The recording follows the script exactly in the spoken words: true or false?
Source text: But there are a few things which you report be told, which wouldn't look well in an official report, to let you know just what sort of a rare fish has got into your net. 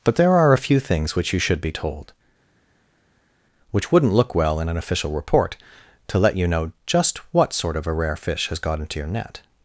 false